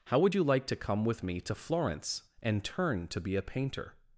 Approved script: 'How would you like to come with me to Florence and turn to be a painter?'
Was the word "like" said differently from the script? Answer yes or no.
no